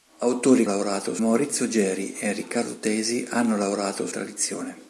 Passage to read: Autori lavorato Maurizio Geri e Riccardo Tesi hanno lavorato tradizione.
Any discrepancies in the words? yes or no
no